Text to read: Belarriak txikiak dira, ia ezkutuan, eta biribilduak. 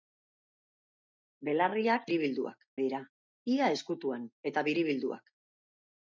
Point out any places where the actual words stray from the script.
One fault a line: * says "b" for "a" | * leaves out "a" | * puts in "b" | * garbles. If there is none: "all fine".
* says "biribilduak" for "txikiak"